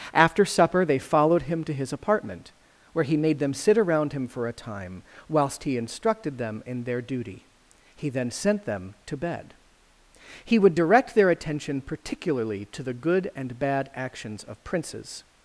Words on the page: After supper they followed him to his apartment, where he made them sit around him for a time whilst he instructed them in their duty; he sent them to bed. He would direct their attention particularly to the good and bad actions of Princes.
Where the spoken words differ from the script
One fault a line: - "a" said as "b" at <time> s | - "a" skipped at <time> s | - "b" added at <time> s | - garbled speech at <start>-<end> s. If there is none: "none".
- "then" added at 8.1 s